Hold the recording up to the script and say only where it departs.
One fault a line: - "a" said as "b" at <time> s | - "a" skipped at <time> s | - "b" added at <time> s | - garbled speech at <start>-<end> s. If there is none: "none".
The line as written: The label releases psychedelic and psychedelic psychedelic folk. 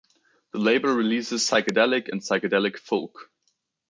- "psychedelic" skipped at 2.8 s